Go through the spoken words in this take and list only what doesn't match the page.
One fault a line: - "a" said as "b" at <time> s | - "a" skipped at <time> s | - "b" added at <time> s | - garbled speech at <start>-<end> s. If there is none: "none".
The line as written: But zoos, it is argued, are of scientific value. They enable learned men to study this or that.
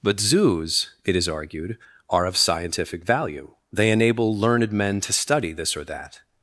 none